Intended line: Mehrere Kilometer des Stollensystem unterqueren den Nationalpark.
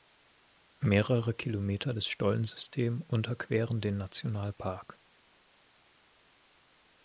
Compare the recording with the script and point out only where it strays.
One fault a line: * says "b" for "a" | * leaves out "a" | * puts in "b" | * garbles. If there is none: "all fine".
all fine